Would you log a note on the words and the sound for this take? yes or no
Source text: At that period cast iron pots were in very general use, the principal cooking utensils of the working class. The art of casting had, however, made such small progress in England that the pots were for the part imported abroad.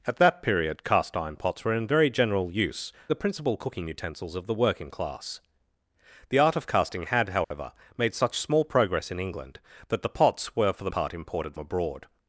yes